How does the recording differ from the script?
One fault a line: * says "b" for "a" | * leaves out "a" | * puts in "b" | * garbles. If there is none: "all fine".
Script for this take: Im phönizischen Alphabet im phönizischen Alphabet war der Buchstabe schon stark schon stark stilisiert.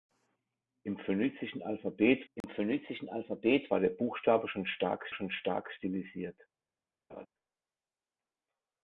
all fine